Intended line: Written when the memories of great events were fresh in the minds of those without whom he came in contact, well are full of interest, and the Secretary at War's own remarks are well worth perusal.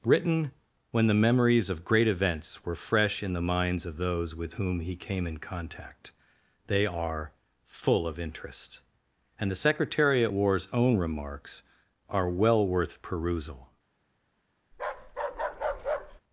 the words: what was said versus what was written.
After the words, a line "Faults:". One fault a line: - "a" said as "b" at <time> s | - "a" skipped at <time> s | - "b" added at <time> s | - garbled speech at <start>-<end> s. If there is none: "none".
Written when the memories of great events were fresh in the minds of those with whom he came in contact, they are full of interest, and the Secretary at War's own remarks are well worth perusal.
Faults:
- "without" said as "with" at 4.3 s
- "well" said as "they" at 6.7 s